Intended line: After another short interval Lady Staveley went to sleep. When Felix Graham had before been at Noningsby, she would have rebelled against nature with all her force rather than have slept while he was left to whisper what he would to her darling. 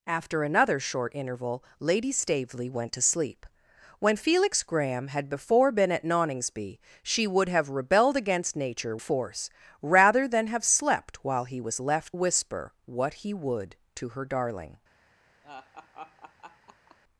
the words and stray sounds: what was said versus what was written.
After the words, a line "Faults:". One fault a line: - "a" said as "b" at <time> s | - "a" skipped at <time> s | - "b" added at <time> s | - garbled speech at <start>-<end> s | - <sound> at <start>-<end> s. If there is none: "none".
After another short interval Lady Staveley went to sleep. When Felix Graham had before been at Noningsby, she would have rebelled against nature force rather than have slept while he was left whisper what he would to her darling.
Faults:
- "with all her" skipped at 9.0 s
- "to" skipped at 12.2 s
- laugh at 15.4-17.0 s